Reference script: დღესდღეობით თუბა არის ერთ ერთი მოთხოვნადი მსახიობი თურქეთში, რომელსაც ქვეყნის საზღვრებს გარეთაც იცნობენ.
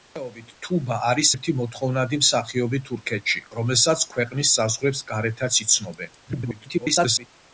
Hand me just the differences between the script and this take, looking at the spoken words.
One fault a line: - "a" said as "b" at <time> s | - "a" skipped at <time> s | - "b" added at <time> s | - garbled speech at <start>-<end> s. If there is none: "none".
- "ერთ" skipped at 1.3 s
- garbled speech at 6.3-7.3 s